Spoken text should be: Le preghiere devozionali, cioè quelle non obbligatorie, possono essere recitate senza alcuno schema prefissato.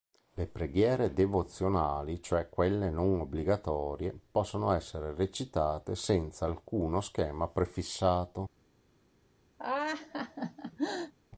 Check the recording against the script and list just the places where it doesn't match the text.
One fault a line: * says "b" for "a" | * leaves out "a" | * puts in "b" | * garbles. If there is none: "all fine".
all fine